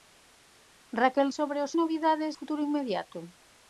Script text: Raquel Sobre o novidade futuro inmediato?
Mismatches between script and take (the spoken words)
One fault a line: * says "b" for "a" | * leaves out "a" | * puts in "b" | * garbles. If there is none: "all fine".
all fine